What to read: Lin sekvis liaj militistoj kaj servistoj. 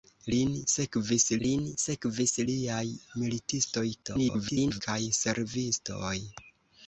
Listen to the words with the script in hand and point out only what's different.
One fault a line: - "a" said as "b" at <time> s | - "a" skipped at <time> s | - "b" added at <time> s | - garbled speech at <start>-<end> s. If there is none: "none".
- "lin sekvis" added at 1.5 s
- garbled speech at 4.0-4.8 s